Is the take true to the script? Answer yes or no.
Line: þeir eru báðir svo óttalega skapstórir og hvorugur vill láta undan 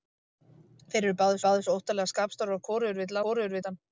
no